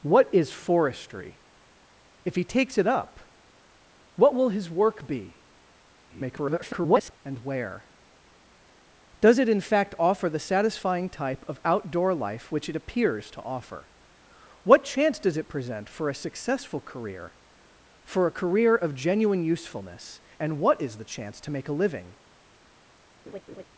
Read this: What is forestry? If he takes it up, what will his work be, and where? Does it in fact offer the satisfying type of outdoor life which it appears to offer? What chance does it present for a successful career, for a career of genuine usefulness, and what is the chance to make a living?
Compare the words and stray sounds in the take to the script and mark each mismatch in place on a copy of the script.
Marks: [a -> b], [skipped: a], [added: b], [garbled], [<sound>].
What is forestry? If he takes it up, what will his work be, [garbled] and where? Does it in fact offer the satisfying type of outdoor life which it appears to offer? What chance does it present for a successful career, for a career of genuine usefulness, and what is the chance to make a living? [laugh]